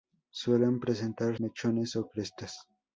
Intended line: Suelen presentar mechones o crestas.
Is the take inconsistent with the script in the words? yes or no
no